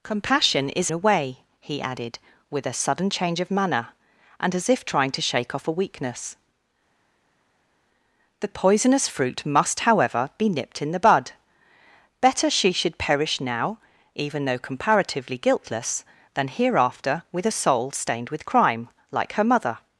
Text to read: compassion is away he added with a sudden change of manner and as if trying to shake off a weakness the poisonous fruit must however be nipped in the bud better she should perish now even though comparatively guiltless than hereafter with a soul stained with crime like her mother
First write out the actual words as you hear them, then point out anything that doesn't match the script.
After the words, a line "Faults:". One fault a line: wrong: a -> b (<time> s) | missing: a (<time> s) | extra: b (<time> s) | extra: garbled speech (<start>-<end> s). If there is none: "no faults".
compassion is away he added with a sudden change of manner and as if trying to shake off a weakness the poisonous fruit must however be nipped in the bud better she should perish now even though comparatively guiltless than hereafter with a soul stained with crime like her mother
Faults:
no faults